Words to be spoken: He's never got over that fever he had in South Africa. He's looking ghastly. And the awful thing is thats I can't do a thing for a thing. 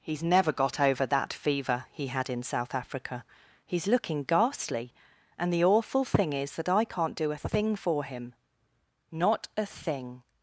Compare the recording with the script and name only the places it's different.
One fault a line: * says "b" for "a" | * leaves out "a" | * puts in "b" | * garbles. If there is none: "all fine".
* says "that" for "thats"
* puts in "him Not"